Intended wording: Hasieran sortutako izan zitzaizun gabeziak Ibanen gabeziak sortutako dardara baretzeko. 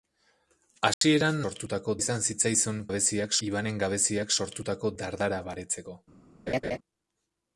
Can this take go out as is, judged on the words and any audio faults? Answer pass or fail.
fail